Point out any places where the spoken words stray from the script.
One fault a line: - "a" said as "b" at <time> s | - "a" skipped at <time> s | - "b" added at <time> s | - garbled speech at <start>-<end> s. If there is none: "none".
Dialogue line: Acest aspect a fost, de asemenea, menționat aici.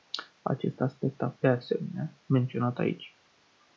- "fost" skipped at 1.3 s